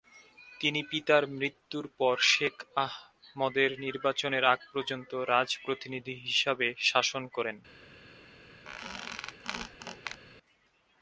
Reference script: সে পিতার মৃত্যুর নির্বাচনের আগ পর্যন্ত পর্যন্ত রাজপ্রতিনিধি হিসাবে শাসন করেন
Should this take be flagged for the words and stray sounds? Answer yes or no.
yes